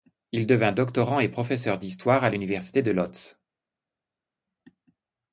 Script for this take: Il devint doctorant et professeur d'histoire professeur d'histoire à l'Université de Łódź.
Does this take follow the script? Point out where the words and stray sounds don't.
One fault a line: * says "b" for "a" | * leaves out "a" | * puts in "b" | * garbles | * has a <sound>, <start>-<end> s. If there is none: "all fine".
* leaves out "professeur d'histoire"